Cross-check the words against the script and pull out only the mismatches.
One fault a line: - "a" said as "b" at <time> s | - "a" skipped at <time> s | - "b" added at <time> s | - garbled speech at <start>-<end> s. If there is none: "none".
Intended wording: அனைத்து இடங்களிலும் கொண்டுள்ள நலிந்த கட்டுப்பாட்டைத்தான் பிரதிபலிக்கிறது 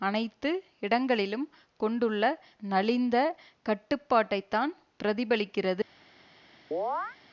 none